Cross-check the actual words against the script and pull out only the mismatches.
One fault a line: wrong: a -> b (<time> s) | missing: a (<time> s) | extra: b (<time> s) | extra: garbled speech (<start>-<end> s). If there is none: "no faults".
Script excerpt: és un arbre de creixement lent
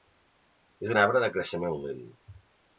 no faults